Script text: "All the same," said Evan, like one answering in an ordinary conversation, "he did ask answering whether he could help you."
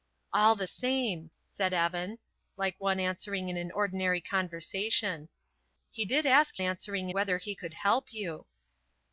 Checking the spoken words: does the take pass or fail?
pass